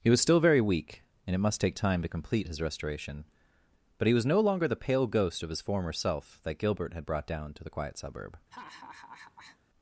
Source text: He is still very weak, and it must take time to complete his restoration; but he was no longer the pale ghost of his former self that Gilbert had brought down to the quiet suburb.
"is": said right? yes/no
no